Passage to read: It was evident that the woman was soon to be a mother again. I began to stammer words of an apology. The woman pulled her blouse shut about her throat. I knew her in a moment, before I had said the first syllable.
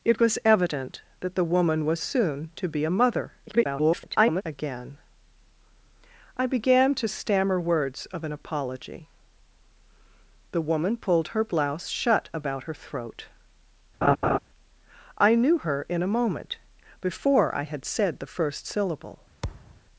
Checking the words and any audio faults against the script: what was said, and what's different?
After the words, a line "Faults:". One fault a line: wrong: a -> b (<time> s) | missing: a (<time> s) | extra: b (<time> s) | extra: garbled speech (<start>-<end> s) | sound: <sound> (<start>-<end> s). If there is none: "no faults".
It was evident that the woman was soon to be a mother [garbled] again. I began to stammer words of an apology. The woman pulled her blouse shut about her throat. I knew her in a moment, before I had said the first syllable.
Faults:
extra: garbled speech (3.5-4.4 s)
sound: laugh (14.0-14.4 s)
sound: thud (19.4-19.8 s)